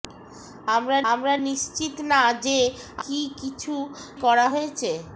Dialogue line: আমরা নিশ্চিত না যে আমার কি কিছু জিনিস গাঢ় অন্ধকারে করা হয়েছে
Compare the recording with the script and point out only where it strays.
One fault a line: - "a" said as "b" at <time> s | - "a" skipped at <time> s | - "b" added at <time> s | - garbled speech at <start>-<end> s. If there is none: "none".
- "আমরা" added at 1.1 s
- "আমার" skipped at 2.6 s
- "জিনিস গাঢ় অন্ধকারে" skipped at 3.7 s